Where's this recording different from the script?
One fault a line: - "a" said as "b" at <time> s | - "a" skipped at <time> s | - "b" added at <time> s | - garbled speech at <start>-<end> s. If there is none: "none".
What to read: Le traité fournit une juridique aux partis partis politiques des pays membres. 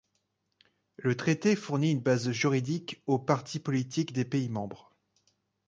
- "base" added at 2.0 s
- "partis" skipped at 3.6 s